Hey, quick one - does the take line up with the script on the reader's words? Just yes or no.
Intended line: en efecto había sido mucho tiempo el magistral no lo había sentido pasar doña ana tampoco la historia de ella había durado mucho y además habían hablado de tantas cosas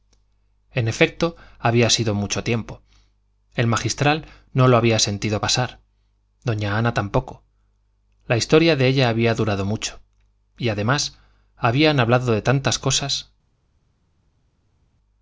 yes